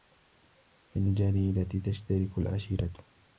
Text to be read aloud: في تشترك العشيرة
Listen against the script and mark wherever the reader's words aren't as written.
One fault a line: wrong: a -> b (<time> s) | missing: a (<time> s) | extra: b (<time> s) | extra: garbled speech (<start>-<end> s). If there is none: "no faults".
extra: الجريرة (1.0 s)